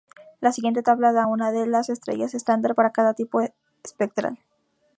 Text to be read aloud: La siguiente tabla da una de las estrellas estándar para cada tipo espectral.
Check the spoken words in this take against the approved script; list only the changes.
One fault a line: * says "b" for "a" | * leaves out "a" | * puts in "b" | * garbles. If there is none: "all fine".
all fine